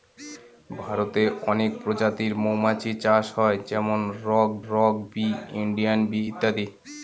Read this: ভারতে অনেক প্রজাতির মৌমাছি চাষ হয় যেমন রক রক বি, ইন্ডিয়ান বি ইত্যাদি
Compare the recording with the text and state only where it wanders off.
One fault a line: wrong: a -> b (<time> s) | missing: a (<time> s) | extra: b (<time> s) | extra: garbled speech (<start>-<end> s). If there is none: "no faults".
no faults